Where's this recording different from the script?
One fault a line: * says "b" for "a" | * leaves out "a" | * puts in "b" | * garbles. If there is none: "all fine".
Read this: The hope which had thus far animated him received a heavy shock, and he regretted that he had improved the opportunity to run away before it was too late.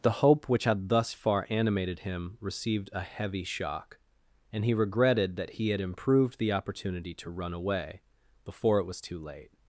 all fine